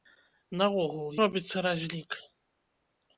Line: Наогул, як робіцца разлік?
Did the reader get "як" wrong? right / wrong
wrong